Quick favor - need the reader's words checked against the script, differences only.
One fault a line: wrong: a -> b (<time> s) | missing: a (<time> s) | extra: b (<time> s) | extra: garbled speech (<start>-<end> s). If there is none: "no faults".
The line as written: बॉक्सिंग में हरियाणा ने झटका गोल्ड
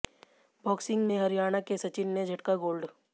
extra: के सचिन (1.6 s)